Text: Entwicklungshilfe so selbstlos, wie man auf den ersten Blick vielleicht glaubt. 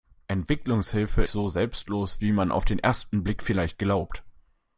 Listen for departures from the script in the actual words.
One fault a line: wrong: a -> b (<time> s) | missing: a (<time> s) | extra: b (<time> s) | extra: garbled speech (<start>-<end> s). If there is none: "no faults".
no faults